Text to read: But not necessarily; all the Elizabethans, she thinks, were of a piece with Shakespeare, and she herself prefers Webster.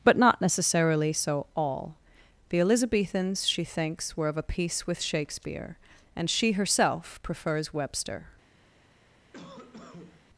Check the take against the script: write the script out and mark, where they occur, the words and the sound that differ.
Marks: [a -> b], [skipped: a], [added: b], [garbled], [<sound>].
But not necessarily; [added: so] all the Elizabethans, she thinks, were of a piece with Shakespeare, and she herself prefers Webster. [cough]